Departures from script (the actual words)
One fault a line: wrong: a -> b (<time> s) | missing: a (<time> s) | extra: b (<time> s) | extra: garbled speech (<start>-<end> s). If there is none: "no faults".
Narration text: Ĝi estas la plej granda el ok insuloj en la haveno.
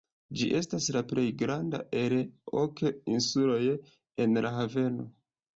no faults